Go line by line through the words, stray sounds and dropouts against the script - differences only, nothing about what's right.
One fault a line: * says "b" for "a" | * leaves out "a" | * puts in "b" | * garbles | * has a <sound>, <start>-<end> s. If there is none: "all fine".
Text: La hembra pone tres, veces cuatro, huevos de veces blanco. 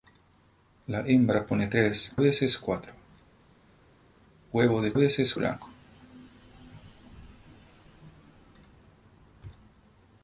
all fine